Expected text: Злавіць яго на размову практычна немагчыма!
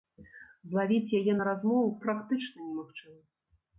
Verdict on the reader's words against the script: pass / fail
fail